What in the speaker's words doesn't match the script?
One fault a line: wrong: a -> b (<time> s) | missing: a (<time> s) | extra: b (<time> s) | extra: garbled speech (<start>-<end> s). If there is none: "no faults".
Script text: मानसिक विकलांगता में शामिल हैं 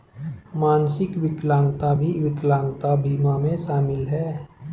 extra: भी विकलांगता बीमा (1.9 s)